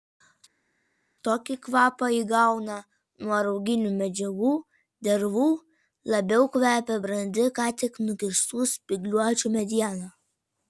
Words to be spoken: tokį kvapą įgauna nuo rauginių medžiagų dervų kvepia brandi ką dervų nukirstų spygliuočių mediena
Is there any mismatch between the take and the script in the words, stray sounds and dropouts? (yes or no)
yes